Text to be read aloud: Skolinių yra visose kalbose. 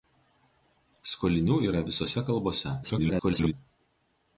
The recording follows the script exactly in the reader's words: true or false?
false